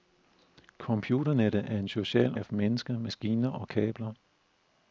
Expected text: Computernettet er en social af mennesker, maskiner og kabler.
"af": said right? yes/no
yes